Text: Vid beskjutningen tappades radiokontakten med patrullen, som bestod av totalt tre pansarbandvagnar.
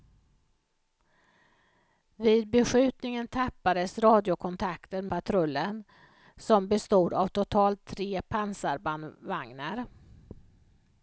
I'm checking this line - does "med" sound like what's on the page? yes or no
no